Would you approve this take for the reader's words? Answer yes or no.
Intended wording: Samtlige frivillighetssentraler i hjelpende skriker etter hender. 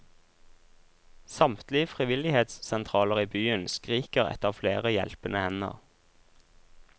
no